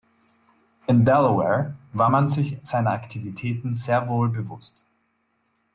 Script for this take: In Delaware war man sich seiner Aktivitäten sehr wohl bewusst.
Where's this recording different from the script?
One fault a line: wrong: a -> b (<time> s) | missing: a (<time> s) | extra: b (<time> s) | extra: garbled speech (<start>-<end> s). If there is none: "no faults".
no faults